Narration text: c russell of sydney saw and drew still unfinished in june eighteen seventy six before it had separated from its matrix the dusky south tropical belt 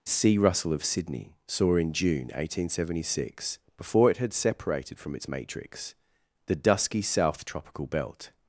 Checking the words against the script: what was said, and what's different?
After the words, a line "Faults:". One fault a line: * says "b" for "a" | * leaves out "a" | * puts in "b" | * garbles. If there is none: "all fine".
c russell of sydney saw in june eighteen seventy six before it had separated from its matrix the dusky south tropical belt
Faults:
* leaves out "and drew still unfinished"